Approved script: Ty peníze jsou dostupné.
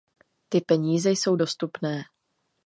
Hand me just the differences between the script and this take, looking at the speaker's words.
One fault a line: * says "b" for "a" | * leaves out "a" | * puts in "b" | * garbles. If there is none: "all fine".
all fine